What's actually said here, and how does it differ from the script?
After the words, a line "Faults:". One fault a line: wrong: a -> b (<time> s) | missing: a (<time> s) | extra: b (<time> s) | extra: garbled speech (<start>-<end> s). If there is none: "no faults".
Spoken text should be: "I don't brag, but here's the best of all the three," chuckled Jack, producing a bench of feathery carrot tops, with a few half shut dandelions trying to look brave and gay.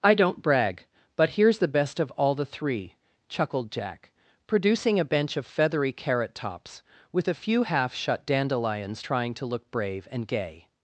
"I don't brag, but here's the best of all the three," chuckled Jack, producing a bench of feathery carrot tops, with a few half shut dandelions trying to look brave and gay.
Faults:
no faults